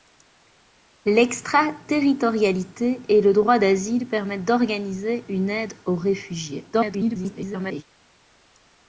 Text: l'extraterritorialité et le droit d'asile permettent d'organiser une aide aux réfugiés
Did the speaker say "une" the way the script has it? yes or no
yes